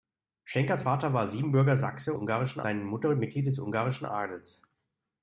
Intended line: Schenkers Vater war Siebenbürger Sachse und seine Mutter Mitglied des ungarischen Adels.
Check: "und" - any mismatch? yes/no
yes